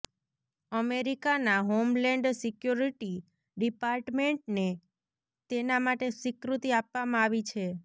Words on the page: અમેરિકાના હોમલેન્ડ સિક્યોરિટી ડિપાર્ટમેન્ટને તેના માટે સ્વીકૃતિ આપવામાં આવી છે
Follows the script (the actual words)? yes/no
yes